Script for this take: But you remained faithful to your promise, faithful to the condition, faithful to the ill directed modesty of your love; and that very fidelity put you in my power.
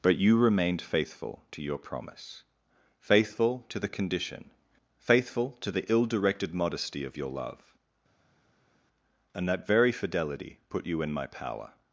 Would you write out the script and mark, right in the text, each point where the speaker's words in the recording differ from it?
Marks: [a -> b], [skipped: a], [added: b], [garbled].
But you remained faithful to your promise, faithful to the condition, faithful to the ill directed modesty of your love; and that very fidelity put you in my power.